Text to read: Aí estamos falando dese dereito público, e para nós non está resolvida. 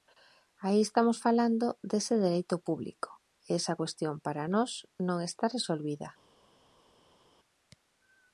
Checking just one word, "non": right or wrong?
right